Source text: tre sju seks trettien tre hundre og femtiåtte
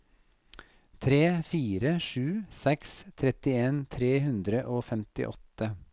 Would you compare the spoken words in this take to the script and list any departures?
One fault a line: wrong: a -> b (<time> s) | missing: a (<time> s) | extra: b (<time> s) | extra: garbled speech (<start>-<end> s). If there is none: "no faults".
extra: fire (1.5 s)